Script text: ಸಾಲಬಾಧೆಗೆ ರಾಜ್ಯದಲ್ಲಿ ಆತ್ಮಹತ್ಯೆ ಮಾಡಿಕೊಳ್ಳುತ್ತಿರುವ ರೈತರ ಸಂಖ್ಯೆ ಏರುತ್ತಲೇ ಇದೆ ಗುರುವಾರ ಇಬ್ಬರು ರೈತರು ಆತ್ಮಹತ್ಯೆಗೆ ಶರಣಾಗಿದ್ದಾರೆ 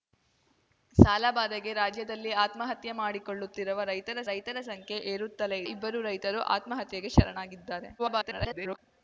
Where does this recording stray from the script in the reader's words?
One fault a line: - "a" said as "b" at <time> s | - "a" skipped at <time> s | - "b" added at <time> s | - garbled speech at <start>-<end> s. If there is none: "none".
- "ರೈತರ" added at 4.3 s
- "ಇದೆ ಗುರುವಾರ" skipped at 5.6 s
- garbled speech at 8.0-8.8 s